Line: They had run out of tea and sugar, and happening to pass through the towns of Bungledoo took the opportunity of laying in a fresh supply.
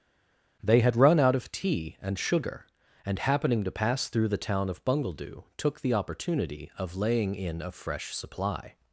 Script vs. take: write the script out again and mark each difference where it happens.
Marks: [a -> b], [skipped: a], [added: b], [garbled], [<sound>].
They had run out of tea and sugar, and happening to pass through the [towns -> town] of Bungledoo took the opportunity of laying in a fresh supply.